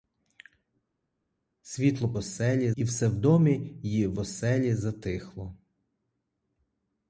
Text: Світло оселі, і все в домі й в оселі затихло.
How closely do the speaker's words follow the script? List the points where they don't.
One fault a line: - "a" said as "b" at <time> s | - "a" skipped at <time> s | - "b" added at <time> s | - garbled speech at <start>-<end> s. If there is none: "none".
none